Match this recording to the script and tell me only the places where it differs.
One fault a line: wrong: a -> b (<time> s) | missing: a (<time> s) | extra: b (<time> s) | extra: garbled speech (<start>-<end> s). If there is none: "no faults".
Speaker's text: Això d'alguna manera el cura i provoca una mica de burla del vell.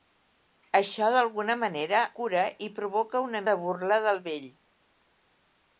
missing: el (2.0 s)
missing: mica (3.4 s)